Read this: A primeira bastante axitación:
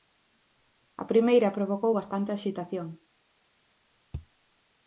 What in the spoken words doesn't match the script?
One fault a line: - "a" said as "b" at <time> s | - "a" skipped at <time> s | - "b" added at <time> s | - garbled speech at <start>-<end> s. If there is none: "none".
- "provocou" added at 1.6 s